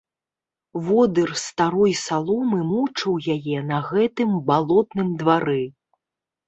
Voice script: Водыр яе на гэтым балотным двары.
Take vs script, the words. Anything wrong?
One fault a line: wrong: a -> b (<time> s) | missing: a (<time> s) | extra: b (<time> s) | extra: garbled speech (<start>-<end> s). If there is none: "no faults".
extra: старой саломы мучыў (1.4 s)